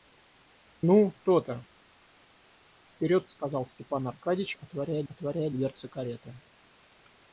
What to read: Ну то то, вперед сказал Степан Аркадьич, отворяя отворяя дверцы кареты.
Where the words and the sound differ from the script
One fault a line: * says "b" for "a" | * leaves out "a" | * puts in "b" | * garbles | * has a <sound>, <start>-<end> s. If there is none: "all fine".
all fine